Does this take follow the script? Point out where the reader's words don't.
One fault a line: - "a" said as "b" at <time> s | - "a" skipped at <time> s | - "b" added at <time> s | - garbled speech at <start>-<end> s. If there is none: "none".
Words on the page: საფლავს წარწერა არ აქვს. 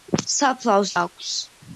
- "წარწერა არ" skipped at 0.9 s